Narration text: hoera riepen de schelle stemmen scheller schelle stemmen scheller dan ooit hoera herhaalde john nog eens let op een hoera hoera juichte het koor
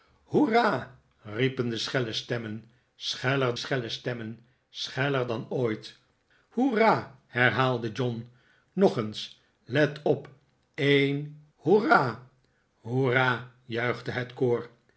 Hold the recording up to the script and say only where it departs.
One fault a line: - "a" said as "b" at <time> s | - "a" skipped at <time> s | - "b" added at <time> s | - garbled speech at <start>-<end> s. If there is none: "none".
none